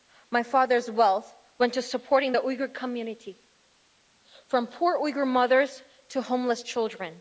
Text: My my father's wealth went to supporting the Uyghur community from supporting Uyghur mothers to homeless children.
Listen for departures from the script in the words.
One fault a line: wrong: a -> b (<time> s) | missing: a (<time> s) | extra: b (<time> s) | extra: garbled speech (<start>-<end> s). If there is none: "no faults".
missing: my (0.4 s)
wrong: supporting -> poor (4.7 s)